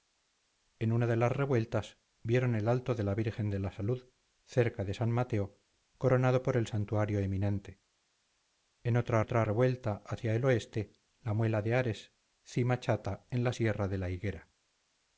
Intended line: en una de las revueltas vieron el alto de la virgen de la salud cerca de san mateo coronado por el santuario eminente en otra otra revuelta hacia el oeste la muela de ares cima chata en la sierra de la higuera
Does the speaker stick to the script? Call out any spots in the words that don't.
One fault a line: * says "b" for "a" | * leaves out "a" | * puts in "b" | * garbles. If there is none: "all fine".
all fine